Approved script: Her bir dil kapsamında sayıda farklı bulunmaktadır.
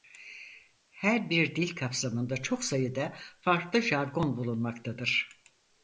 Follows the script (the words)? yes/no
no